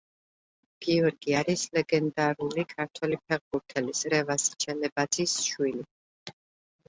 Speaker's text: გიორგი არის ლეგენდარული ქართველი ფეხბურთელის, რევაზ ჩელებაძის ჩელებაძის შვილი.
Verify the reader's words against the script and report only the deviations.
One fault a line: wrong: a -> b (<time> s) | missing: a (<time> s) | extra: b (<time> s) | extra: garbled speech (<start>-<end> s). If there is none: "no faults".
missing: ჩელებაძის (5.4 s)